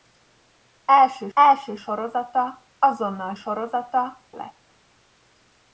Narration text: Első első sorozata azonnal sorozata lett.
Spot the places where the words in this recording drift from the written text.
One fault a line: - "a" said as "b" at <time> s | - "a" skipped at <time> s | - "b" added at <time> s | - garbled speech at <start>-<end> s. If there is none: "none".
none